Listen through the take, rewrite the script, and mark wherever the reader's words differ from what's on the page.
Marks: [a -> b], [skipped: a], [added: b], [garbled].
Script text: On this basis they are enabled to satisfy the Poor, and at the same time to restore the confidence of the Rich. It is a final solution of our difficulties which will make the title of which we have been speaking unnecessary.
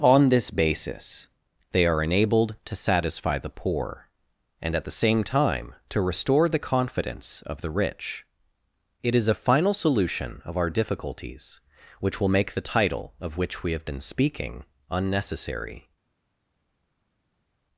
On this basis they are enabled to satisfy the Poor, and at the same time to restore the confidence of the Rich. It is a final solution of our difficulties which will make the title of which we have been speaking unnecessary.